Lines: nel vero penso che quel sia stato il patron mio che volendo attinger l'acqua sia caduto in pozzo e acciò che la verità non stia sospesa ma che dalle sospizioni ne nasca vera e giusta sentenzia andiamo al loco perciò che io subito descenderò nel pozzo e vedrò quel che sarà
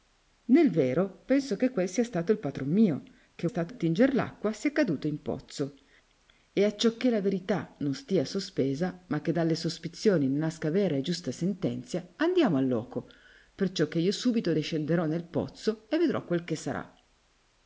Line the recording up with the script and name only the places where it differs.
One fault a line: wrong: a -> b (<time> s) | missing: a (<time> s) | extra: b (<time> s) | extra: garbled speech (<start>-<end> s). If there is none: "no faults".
wrong: volendo -> stato (3.4 s)